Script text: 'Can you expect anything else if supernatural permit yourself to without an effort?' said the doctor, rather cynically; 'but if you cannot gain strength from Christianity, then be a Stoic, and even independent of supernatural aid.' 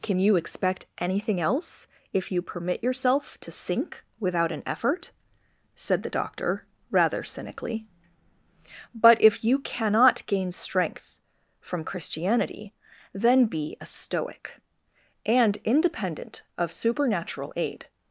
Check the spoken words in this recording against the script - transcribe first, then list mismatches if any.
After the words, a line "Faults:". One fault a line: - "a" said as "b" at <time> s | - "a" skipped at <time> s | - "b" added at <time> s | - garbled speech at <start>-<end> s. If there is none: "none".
'Can you expect anything else if you permit yourself to sink without an effort?' said the doctor, rather cynically; 'but if you cannot gain strength from Christianity, then be a Stoic, and independent of supernatural aid.'
Faults:
- "supernatural" said as "you" at 2.3 s
- "sink" added at 3.5 s
- "even" skipped at 15.6 s